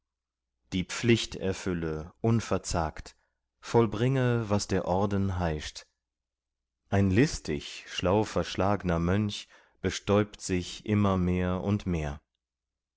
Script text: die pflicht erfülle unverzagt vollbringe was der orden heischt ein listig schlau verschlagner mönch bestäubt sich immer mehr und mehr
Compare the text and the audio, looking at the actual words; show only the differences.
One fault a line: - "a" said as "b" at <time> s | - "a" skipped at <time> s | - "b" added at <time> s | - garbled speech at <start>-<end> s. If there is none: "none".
none